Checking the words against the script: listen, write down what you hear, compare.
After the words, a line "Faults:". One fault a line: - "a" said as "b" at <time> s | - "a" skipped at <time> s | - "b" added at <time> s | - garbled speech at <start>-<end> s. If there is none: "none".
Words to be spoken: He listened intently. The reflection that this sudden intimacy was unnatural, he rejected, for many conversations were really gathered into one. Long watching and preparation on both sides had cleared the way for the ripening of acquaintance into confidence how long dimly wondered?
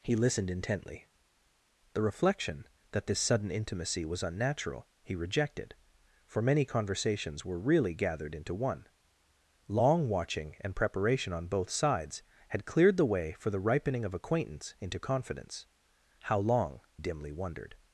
He listened intently. The reflection that this sudden intimacy was unnatural, he rejected, for many conversations were really gathered into one. Long watching and preparation on both sides had cleared the way for the ripening of acquaintance into confidence how long dimly wondered?
Faults:
none